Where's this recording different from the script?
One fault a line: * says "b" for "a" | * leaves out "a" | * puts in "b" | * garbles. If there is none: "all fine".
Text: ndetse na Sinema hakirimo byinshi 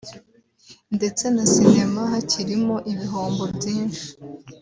* puts in "ibihombo"